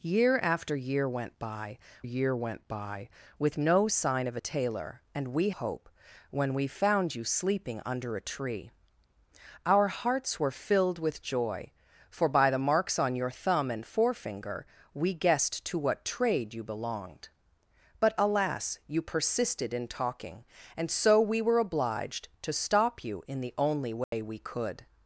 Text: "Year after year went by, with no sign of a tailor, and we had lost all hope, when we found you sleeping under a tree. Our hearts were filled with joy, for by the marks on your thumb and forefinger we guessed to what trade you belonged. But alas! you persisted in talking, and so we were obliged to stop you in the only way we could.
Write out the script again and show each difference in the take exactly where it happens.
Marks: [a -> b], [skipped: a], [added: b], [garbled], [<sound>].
"Year after year went by, [added: year went by] with no sign of a tailor, and we [skipped: had lost all] hope, when we found you sleeping under a tree. Our hearts were filled with joy, for by the marks on your thumb and forefinger we guessed to what trade you belonged. But alas! you persisted in talking, and so we were obliged to stop you in the only way [dropout] we could.